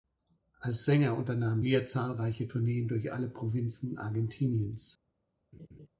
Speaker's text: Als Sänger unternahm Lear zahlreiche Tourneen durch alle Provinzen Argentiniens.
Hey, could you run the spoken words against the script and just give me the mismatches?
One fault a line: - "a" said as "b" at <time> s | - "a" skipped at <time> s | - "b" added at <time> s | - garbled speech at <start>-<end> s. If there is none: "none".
none